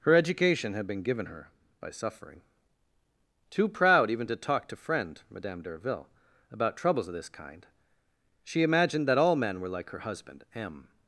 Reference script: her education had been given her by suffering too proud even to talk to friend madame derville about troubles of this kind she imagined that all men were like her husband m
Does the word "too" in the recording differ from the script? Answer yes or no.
no